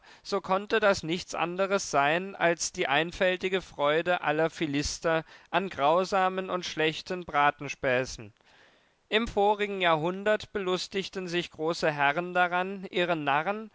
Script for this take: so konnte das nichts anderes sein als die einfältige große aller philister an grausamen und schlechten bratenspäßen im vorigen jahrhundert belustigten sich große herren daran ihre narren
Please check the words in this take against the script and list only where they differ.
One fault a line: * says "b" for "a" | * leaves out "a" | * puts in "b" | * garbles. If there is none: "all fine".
* says "freude" for "große"